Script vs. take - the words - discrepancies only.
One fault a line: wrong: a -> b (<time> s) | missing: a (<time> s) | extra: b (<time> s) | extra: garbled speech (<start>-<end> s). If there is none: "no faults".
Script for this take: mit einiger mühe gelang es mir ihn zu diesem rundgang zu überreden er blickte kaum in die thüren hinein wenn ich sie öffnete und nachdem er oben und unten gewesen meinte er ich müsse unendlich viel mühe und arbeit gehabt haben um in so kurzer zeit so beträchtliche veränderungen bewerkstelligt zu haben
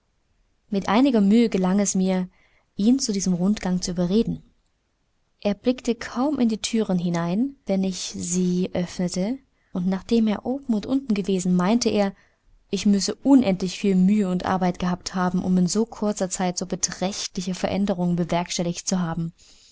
no faults